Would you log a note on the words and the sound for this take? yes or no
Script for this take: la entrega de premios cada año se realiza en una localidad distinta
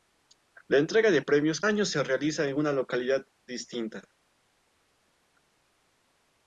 yes